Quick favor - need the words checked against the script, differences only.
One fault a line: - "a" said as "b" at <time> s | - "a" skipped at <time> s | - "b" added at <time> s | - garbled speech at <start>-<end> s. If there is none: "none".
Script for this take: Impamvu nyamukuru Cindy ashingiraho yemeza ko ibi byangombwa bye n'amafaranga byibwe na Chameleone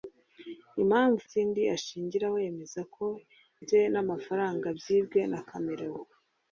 - "nyamukuru" skipped at 1.2 s
- "ibi byangombwa" skipped at 3.0 s